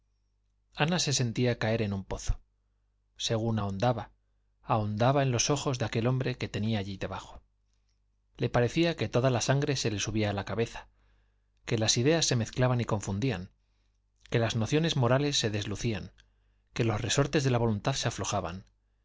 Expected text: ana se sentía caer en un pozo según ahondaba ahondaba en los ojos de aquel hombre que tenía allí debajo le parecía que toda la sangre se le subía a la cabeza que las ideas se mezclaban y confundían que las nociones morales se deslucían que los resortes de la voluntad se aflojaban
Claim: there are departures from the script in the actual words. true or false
false